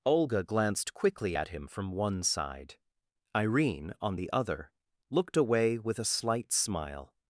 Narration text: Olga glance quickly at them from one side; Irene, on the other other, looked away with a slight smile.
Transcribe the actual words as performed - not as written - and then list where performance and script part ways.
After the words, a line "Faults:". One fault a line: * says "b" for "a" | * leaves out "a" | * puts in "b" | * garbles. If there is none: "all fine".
Olga glanced quickly at him from one side; Irene, on the other, looked away with a slight smile.
Faults:
* says "glanced" for "glance"
* says "him" for "them"
* leaves out "other"